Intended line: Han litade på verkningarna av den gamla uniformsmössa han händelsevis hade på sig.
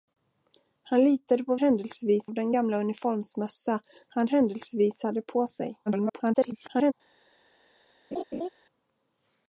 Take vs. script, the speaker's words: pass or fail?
fail